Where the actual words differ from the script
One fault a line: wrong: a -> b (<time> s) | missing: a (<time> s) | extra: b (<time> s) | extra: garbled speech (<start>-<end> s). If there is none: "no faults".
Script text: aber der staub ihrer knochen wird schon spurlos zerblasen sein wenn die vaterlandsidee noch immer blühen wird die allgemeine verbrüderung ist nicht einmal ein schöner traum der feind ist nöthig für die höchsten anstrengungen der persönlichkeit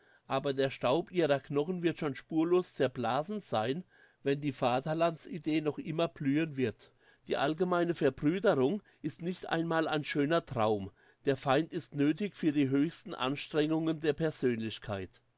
no faults